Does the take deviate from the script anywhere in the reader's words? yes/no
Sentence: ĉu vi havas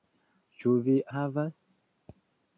no